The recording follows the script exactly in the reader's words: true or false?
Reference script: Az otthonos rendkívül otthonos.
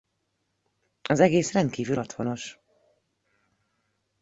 false